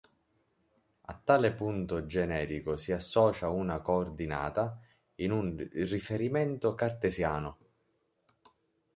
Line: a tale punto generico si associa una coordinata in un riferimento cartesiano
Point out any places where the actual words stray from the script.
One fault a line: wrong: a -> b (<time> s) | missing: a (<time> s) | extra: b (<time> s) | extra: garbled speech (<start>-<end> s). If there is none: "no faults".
no faults